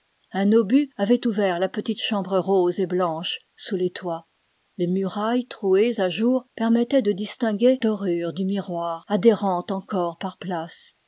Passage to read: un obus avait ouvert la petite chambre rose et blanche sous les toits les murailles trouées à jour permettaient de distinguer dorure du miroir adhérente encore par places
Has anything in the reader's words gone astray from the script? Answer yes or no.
no